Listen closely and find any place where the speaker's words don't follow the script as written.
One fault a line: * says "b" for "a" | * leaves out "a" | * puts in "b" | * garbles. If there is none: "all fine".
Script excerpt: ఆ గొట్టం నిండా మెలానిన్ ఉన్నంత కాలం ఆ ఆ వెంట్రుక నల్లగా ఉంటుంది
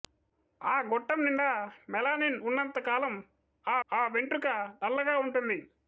all fine